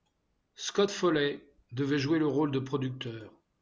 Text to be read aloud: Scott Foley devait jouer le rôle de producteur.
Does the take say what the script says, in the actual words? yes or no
yes